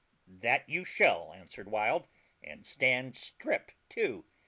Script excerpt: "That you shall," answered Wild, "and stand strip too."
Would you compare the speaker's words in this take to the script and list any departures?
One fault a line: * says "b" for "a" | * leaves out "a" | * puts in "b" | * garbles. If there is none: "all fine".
all fine